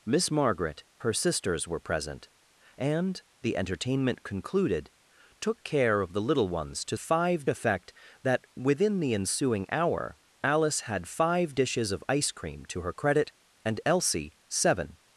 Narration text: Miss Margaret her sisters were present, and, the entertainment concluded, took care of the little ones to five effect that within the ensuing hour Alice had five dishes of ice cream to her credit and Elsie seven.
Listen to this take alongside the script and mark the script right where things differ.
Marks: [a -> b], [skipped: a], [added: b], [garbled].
Miss Margaret her sisters were present, and, the entertainment concluded, took care of the little ones to five effect that within the ensuing hour Alice had five dishes of ice cream to her credit and Elsie seven.